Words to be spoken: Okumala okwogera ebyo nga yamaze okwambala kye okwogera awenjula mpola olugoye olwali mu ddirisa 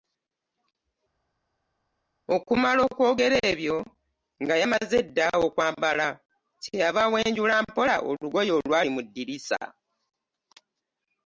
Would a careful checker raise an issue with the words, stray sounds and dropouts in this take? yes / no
yes